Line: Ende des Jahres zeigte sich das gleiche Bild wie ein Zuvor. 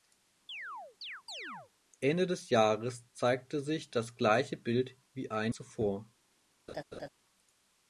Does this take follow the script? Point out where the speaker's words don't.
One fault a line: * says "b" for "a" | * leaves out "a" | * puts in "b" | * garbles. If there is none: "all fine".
all fine